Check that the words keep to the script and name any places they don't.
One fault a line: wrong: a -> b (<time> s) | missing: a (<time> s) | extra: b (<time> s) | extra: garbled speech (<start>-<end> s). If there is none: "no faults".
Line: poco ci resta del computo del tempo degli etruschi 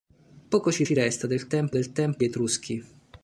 extra: ci (0.8 s)
wrong: computo -> tempo (1.5 s)
missing: degli (2.2 s)